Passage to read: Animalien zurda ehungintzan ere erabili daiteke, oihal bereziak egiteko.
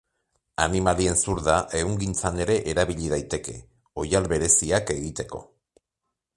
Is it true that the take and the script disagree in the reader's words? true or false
false